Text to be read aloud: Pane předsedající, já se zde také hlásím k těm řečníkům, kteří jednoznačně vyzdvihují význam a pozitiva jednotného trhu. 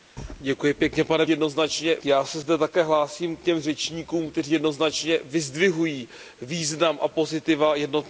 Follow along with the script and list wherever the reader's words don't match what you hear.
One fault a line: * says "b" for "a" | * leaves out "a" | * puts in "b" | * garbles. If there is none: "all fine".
* says "jednoznačně" for "předsedající"